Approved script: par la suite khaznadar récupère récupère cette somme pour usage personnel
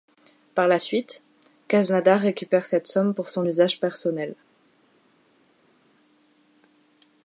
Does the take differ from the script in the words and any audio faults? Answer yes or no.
yes